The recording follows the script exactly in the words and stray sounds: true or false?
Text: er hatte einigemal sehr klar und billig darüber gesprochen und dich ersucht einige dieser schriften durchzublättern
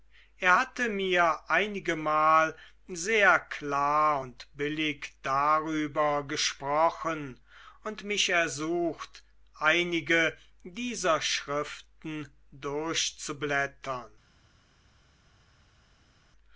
false